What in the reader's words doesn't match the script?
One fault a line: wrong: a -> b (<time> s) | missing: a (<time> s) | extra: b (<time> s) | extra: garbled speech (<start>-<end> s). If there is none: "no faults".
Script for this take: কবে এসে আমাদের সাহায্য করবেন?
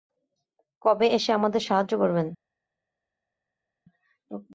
no faults